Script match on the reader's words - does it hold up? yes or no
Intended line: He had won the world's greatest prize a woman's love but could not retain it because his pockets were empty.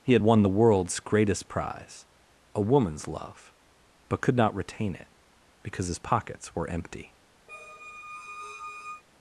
yes